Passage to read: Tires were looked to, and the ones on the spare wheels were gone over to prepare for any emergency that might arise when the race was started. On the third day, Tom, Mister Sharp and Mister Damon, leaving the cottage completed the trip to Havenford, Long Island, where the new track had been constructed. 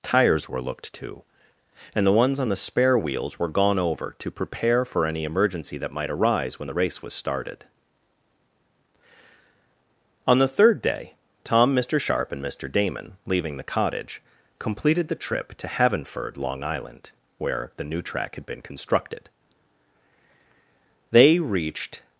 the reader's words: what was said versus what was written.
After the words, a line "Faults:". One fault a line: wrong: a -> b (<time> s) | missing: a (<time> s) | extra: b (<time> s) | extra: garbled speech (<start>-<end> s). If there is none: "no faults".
Tires were looked to, and the ones on the spare wheels were gone over to prepare for any emergency that might arise when the race was started. On the third day, Tom, Mister Sharp and Mister Damon, leaving the cottage completed the trip to Havenford, Long Island, where the new track had been constructed. They reached
Faults:
extra: They reached (21.1 s)